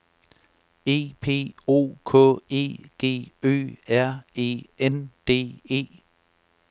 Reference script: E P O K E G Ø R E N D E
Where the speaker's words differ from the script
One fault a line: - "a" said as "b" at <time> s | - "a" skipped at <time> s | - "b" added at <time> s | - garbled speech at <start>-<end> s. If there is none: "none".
none